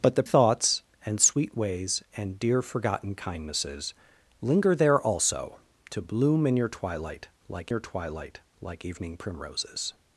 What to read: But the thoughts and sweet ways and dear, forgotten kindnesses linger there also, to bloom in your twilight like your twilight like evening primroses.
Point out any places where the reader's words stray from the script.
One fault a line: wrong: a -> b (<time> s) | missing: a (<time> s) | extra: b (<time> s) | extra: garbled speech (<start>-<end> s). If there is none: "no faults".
no faults